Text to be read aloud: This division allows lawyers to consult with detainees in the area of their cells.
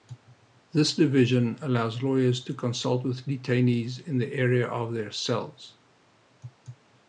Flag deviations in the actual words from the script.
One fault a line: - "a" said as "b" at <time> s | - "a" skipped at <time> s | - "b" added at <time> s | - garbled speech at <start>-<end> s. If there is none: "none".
none